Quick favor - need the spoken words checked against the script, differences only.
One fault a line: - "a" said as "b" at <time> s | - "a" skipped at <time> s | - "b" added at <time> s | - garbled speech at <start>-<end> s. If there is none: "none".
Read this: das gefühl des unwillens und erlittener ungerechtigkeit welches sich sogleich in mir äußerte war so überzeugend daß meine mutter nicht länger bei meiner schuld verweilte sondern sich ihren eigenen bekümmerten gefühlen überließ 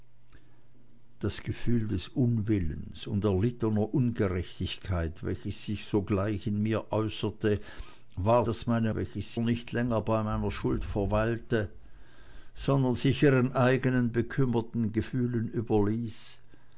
- "so überzeugend" skipped at 8.5 s
- "mutter" said as "welches" at 8.9 s